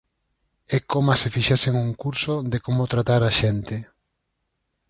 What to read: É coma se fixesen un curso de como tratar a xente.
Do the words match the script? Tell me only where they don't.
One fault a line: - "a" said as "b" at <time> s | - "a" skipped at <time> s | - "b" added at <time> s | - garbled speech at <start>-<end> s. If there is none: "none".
none